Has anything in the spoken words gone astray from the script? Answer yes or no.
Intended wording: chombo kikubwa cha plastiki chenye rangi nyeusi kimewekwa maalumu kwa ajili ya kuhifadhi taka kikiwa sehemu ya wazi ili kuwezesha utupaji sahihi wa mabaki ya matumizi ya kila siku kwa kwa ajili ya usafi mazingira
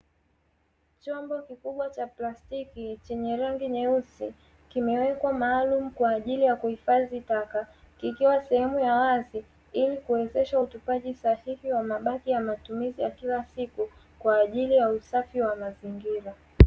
yes